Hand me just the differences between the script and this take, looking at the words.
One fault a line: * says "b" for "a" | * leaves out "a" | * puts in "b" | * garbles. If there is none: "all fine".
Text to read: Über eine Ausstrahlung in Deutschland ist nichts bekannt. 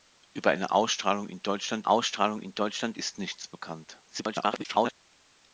* puts in "Ausstrahlung in Deutschland"
* garbles